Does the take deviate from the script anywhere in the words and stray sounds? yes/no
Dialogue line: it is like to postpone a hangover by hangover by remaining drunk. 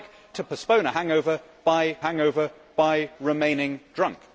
no